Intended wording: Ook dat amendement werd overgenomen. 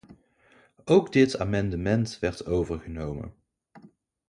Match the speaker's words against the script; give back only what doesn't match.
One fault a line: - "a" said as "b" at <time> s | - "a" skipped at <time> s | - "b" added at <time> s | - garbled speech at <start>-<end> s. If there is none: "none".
- "dat" said as "dit" at 1.1 s